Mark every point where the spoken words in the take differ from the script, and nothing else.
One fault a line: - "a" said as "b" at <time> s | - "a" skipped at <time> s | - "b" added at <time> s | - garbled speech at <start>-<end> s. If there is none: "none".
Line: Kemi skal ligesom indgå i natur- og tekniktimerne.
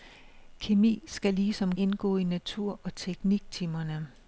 none